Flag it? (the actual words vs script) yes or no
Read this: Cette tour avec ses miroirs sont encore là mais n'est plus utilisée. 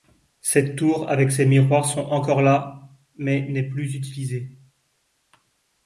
no